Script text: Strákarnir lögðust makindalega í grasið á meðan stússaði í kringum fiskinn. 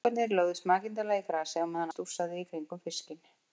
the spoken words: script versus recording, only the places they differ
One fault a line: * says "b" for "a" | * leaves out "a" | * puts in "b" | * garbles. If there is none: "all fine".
all fine